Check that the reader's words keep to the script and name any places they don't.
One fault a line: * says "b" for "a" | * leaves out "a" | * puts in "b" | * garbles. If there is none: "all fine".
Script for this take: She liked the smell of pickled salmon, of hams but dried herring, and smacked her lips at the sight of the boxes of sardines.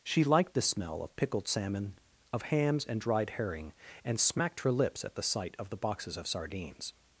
* says "and" for "but"